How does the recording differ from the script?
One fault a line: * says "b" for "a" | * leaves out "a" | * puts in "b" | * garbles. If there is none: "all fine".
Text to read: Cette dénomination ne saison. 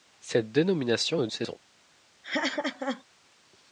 all fine